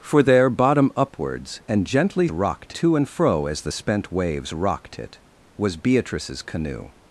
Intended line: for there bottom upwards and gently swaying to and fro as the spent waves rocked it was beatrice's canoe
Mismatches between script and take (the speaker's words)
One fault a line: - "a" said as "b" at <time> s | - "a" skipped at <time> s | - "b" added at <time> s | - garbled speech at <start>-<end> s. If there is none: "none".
- "swaying" said as "rocked" at 2.3 s